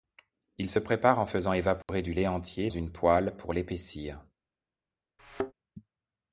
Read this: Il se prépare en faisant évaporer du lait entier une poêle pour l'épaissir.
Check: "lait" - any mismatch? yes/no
no